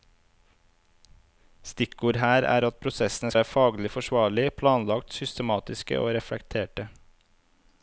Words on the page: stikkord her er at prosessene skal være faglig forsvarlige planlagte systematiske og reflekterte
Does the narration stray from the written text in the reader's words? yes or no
yes